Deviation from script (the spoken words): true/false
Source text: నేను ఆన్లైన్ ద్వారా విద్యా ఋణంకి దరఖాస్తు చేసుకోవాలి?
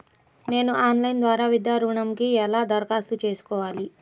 true